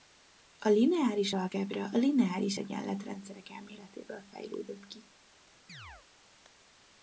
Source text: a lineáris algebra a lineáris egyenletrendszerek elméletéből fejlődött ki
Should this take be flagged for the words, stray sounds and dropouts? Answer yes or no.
yes